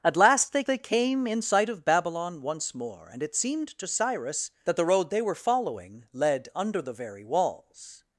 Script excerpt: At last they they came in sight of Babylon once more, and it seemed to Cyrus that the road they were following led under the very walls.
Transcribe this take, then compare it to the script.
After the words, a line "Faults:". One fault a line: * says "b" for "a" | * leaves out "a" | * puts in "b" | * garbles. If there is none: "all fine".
At last they they came in sight of Babylon once more, and it seemed to Cyrus that the road they were following led under the very walls.
Faults:
all fine